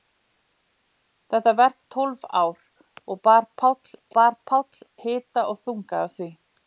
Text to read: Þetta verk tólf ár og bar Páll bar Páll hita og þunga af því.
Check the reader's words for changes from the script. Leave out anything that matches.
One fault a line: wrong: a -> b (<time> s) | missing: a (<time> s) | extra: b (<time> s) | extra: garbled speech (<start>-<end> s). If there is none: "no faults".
no faults